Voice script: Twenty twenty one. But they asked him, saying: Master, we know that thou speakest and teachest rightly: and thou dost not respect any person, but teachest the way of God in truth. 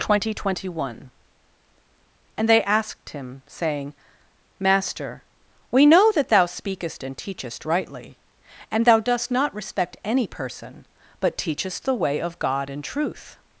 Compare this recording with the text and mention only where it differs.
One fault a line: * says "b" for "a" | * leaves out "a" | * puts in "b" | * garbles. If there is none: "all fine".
* says "And" for "But"